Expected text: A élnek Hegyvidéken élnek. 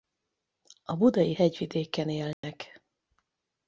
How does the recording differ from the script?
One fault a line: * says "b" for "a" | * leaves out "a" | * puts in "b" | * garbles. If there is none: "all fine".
* says "budai" for "élnek"